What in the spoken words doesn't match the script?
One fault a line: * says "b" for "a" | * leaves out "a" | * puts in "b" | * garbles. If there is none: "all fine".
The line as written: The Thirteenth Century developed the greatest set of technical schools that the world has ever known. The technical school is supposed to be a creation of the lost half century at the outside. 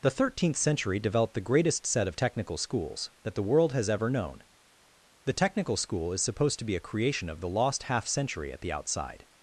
all fine